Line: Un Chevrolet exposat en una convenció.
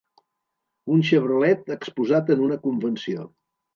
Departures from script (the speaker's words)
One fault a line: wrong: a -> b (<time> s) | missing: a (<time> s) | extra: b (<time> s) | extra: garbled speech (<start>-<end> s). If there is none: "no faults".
no faults